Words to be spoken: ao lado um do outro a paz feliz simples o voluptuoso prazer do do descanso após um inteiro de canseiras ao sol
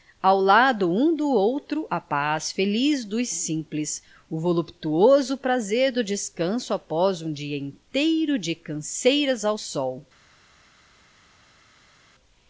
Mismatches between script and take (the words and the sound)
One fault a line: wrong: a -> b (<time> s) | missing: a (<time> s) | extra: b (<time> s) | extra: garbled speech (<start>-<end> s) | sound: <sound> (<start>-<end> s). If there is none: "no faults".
extra: dos (3.0 s)
missing: do (6.0 s)
extra: dia (7.3 s)